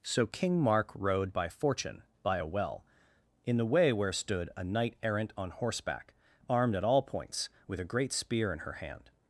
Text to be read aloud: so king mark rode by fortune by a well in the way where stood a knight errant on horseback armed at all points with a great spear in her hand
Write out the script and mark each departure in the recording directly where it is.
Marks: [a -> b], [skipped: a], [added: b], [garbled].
so king mark rode by fortune by a well in the way where stood a knight errant on horseback armed at all points with a great spear in her hand